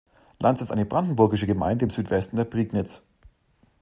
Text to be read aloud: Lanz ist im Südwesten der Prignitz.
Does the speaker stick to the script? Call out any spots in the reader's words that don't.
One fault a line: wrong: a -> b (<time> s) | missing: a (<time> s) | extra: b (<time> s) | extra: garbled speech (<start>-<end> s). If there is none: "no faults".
extra: eine brandenburgische Gemeinde (0.7 s)